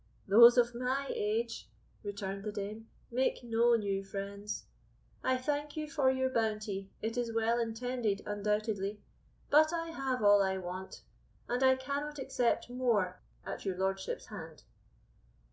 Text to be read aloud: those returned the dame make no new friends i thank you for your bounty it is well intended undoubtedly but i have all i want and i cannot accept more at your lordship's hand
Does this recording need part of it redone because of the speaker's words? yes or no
yes